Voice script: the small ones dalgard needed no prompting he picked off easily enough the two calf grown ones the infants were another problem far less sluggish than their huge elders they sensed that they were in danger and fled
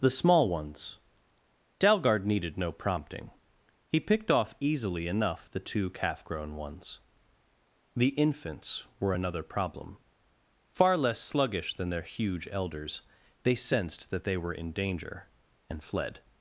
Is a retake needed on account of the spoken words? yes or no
no